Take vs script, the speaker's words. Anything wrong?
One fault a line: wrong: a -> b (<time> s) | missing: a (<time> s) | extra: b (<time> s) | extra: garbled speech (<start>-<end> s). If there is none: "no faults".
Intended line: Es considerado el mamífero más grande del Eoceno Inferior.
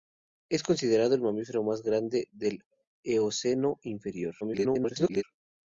extra: garbled speech (4.4-5.2 s)